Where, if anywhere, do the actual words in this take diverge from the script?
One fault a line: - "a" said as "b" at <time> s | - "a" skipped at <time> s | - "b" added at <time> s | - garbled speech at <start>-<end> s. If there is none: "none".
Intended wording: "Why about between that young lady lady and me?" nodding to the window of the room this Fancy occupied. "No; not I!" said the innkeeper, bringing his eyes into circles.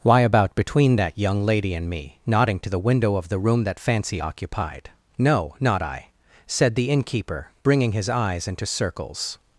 - "lady" skipped at 1.8 s
- "this" said as "that" at 3.6 s